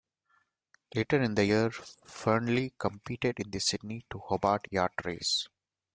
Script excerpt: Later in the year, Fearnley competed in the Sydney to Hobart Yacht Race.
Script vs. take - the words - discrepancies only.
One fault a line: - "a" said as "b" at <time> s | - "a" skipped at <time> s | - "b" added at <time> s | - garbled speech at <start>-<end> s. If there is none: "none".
none